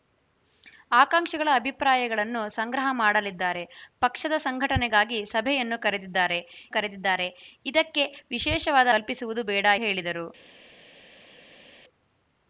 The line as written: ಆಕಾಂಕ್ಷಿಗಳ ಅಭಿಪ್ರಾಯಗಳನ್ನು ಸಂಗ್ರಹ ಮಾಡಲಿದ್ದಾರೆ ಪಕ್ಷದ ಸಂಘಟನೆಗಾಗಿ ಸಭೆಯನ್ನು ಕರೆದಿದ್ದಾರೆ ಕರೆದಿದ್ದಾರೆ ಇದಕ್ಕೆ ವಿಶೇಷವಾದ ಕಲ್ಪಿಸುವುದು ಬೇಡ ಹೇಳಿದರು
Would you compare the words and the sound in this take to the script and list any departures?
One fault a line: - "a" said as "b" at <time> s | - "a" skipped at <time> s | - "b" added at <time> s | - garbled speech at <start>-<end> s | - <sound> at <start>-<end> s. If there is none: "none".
none